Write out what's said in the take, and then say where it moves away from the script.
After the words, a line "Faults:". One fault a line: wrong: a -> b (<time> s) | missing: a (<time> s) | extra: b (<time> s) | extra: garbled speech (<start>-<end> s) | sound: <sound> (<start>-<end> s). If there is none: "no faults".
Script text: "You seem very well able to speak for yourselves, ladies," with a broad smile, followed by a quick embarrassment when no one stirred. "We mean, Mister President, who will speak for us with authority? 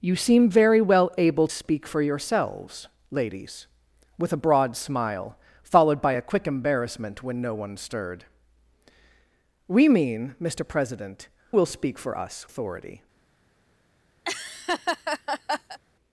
"You seem very well able speak for yourselves, ladies," with a broad smile, followed by a quick embarrassment when no one stirred. "We mean, Mister President, will speak for us authority?
Faults:
missing: to (1.5 s)
missing: who (11.3 s)
missing: with (12.5 s)
sound: laugh (14.2-15.8 s)